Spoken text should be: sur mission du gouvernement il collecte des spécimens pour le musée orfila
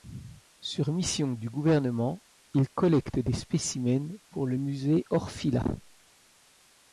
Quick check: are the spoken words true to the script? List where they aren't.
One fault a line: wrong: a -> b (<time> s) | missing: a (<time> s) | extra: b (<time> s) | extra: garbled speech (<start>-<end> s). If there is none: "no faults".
no faults